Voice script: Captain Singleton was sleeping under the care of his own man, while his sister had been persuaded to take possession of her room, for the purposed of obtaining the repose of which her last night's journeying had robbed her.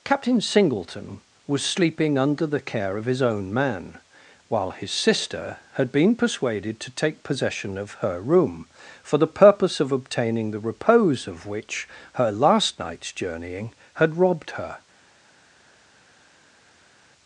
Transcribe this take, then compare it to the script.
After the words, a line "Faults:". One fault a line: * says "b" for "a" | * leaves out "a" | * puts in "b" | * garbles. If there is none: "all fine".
Captain Singleton was sleeping under the care of his own man, while his sister had been persuaded to take possession of her room, for the purpose of obtaining the repose of which her last night's journeying had robbed her.
Faults:
* says "purpose" for "purposed"